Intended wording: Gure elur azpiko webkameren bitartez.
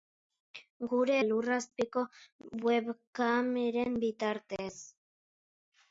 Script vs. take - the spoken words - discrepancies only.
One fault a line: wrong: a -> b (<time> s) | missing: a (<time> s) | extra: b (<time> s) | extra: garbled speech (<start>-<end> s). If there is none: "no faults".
no faults